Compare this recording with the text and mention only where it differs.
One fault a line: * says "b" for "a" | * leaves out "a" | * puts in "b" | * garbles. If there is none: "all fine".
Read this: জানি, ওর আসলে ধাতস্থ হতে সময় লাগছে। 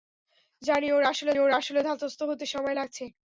* puts in "ওর আসলে"